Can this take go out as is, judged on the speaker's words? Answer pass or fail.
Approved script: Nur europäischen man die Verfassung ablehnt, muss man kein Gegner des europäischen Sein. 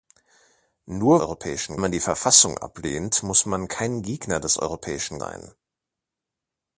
pass